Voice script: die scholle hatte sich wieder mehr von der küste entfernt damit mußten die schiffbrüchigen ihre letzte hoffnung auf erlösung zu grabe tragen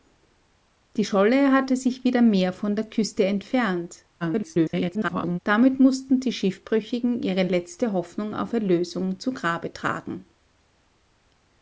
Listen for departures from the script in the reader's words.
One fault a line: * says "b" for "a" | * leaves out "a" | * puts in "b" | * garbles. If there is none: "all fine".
* garbles